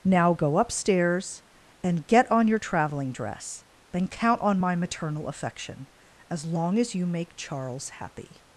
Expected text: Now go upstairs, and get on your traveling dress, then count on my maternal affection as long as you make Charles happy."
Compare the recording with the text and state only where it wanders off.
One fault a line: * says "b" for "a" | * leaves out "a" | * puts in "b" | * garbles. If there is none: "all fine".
all fine